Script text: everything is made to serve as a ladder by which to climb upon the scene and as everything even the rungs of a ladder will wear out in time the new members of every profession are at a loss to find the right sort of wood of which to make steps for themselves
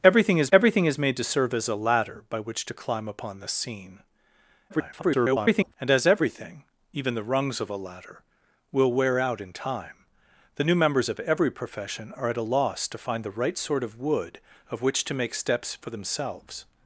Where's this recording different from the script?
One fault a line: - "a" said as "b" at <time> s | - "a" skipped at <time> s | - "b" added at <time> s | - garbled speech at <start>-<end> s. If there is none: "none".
- "everything is" added at 0.5 s
- garbled speech at 4.7-5.7 s